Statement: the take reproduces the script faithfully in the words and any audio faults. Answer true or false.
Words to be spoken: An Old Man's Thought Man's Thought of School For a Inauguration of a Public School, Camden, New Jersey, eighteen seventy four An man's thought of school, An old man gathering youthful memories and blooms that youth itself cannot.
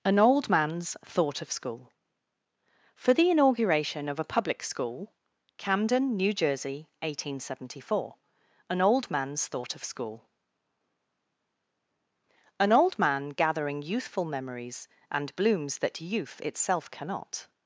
false